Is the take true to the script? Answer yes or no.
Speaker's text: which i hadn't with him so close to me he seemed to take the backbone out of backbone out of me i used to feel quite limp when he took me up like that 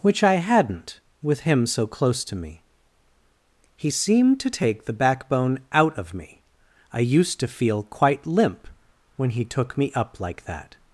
no